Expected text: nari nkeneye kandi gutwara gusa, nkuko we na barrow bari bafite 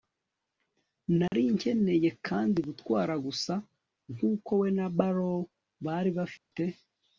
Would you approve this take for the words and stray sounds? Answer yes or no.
no